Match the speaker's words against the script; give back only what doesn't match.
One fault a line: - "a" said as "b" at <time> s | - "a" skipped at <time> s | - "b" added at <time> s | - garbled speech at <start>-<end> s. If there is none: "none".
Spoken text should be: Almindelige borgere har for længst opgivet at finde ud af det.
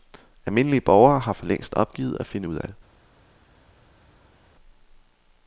none